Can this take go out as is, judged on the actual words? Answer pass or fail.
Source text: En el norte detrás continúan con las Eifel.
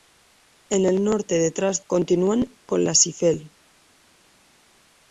pass